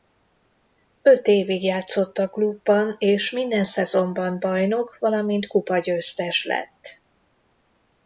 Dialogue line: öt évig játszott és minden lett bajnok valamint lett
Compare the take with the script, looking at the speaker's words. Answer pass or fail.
fail